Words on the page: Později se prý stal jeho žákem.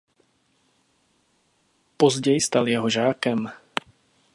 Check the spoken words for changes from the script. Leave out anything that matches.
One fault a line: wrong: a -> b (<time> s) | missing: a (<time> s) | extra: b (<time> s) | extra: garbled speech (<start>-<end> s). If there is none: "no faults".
missing: se prý (2.4 s)